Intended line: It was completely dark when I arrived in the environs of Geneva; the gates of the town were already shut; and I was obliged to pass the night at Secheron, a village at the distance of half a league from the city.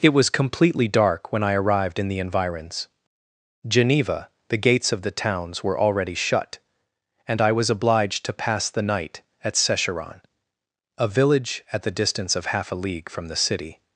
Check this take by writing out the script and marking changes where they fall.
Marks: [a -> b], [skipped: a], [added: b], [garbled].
It was completely dark when I arrived in the environs [skipped: of] Geneva; the gates of the [town -> towns] were already shut; and I was obliged to pass the night at Secheron, a village at the distance of half a league from the city.